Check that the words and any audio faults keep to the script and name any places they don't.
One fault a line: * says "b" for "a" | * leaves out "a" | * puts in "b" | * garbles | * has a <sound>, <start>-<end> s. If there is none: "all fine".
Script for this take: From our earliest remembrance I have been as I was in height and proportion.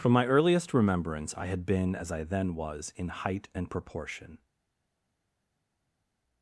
* says "my" for "our"
* says "had" for "have"
* puts in "then"